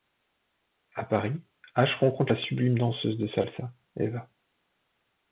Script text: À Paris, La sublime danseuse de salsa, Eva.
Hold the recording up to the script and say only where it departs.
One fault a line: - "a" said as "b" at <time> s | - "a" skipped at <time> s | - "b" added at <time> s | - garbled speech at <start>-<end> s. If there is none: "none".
- "Ash rencontre" added at 1.8 s